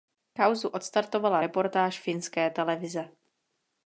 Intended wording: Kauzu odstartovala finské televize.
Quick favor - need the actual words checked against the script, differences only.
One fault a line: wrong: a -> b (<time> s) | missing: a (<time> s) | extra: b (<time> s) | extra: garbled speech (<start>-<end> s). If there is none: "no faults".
extra: reportáž (1.4 s)